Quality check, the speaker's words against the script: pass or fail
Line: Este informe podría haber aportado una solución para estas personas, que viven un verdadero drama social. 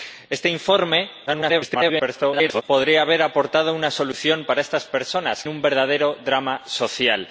fail